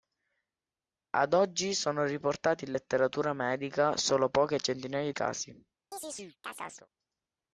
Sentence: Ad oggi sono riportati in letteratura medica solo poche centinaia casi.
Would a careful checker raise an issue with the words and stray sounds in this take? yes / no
yes